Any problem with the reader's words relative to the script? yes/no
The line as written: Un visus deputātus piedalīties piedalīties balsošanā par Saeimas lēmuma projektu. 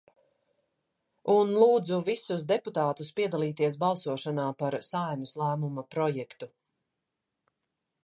yes